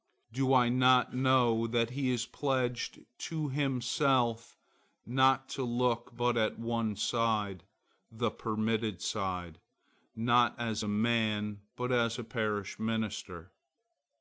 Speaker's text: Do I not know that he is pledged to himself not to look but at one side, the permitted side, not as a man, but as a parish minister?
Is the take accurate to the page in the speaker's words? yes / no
yes